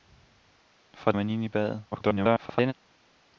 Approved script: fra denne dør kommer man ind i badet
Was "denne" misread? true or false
true